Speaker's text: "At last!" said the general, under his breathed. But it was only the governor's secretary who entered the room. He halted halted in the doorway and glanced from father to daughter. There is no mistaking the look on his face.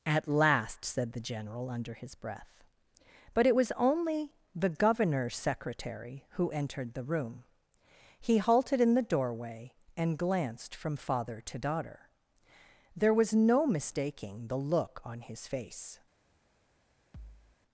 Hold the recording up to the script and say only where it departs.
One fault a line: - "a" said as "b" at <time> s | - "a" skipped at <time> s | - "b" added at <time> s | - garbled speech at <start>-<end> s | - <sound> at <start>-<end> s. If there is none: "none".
- "breathed" said as "breath" at 2.1 s
- "halted" skipped at 8.8 s
- "is" said as "was" at 13.1 s
- thud at 17.1-17.6 s